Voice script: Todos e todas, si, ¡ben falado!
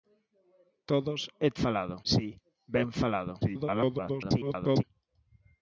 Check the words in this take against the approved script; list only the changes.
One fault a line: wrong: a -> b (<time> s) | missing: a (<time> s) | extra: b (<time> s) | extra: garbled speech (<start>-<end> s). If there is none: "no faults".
wrong: todas -> falado (1.6 s)
extra: garbled speech (3.4-4.8 s)